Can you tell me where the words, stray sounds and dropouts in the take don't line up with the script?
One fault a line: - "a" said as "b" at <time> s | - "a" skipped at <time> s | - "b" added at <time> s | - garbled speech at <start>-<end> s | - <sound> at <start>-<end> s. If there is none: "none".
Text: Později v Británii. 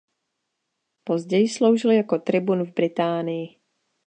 - "sloužil jako tribun" added at 1.5 s